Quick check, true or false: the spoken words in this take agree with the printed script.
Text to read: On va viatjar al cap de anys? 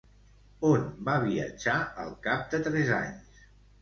false